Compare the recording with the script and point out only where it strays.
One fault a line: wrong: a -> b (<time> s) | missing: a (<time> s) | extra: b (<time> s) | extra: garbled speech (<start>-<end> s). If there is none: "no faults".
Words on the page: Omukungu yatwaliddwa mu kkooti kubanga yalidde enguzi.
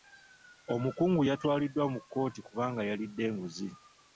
no faults